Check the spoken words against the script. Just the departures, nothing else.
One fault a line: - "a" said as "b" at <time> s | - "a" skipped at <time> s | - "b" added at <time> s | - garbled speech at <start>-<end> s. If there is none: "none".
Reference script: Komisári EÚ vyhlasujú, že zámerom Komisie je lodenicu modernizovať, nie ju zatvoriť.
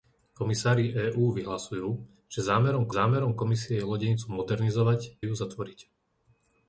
- "zámerom" added at 2.9 s
- "nie" skipped at 5.2 s